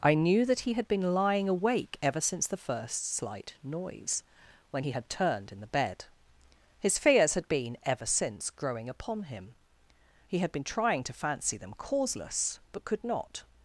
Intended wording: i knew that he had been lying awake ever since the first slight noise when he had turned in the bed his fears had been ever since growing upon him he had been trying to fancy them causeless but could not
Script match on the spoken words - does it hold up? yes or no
yes